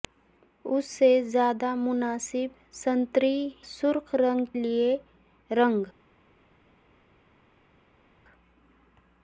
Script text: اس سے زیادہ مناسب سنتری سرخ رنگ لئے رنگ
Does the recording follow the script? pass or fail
pass